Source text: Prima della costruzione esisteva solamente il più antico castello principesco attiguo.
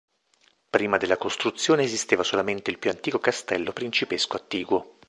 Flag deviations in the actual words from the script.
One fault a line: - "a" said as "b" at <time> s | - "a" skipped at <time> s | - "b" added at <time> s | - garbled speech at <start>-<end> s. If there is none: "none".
none